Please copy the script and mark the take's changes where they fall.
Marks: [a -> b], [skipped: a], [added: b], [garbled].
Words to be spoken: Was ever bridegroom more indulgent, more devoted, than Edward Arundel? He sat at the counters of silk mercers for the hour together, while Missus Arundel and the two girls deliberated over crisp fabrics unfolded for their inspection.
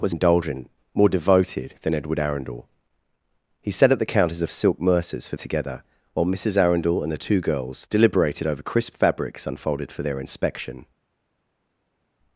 Was [skipped: ever bridegroom more] indulgent, more devoted, than Edward Arundel? He sat at the counters of silk mercers for [skipped: the hour] together, while Missus Arundel and the two girls deliberated over crisp fabrics unfolded for their inspection.